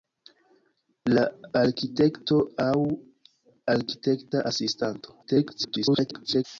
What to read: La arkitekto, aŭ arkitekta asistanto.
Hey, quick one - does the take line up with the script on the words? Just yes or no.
no